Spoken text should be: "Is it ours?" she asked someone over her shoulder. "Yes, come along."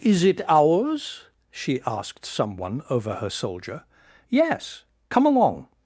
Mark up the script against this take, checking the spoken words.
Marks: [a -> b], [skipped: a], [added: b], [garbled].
"Is it ours?" she asked someone over her [shoulder. -> soldier] "Yes, come along."